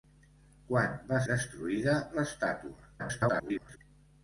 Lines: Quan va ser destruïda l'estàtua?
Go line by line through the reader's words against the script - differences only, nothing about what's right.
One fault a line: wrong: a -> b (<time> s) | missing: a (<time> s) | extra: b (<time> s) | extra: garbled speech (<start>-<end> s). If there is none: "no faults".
missing: ser (1.2 s)
extra: garbled speech (3.0-3.8 s)